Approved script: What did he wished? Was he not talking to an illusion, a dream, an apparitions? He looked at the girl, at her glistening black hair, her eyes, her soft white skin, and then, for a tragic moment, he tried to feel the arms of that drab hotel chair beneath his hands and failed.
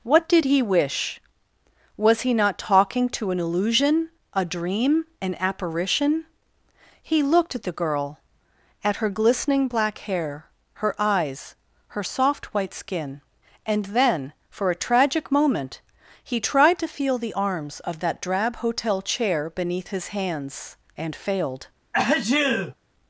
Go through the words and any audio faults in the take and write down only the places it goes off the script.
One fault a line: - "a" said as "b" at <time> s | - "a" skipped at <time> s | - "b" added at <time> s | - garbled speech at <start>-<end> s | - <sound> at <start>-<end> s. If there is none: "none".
- "wished" said as "wish" at 0.6 s
- "apparitions" said as "apparition" at 5.4 s
- sneeze at 21.9-22.7 s